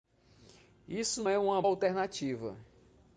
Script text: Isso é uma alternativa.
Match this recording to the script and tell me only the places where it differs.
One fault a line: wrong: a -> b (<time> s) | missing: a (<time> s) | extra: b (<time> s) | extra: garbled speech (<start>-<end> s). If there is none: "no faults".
no faults